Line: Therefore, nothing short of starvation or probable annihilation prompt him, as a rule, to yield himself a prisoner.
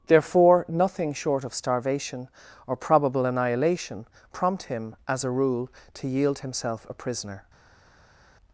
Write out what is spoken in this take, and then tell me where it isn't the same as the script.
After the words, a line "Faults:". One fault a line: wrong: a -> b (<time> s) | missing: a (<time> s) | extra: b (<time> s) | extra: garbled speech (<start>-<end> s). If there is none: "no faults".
Therefore, nothing short of starvation or probable annihilation prompt him, as a rule, to yield himself a prisoner.
Faults:
no faults